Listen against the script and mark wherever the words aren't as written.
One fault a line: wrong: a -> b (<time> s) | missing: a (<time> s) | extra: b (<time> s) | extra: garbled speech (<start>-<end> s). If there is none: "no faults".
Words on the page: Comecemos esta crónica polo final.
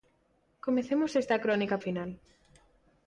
missing: polo (1.8 s)